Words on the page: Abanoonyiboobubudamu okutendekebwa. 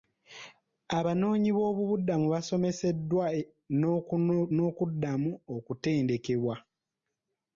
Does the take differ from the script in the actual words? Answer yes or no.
yes